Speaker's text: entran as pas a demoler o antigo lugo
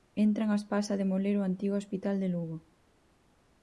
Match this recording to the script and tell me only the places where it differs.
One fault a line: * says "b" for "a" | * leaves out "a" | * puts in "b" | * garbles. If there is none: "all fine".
* puts in "hospital de"